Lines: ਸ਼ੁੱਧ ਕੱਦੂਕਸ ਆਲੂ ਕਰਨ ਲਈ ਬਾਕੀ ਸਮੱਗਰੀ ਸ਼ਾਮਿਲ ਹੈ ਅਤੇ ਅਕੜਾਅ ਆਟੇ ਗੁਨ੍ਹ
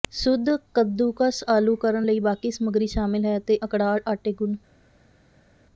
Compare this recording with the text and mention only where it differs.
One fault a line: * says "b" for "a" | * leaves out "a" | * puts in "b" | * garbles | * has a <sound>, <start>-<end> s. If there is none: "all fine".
all fine